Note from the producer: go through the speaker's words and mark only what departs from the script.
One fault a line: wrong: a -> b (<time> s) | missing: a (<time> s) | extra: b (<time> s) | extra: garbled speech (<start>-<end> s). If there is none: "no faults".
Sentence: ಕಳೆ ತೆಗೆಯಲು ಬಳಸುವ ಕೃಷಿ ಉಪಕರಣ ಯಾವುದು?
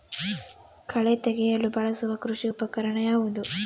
no faults